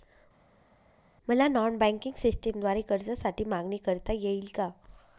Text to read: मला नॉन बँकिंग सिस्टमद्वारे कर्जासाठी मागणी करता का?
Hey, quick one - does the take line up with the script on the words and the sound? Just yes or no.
no